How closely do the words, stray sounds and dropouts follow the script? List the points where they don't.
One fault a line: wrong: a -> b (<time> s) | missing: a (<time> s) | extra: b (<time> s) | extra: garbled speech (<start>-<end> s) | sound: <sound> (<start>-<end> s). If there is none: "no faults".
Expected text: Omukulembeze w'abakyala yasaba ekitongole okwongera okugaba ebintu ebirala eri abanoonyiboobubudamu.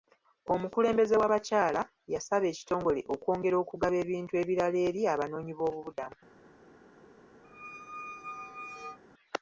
sound: squeak (7.4-9.0 s)